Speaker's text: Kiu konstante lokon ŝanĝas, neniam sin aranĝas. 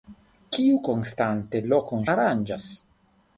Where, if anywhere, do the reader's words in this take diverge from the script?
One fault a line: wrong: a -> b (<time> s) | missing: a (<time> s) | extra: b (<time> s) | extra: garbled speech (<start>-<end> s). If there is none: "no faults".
missing: ŝanĝas neniam sin (2.1 s)